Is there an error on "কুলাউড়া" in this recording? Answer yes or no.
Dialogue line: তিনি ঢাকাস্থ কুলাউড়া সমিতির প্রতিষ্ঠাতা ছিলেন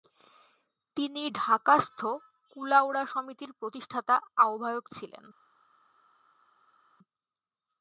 no